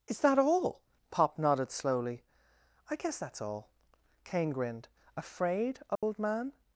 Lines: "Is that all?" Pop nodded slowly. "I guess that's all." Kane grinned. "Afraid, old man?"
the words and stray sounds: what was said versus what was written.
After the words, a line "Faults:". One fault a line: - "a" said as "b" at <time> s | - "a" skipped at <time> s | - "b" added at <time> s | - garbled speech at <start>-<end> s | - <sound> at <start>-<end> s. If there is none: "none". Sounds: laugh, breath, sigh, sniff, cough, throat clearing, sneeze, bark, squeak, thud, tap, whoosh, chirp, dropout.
"Is that all?" Pop nodded slowly. "I guess that's all." Kane grinned. "Afraid, old man?"
Faults:
- dropout at 6.0-6.0 s